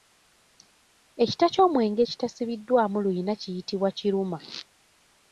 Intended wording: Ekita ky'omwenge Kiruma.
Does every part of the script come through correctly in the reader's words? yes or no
no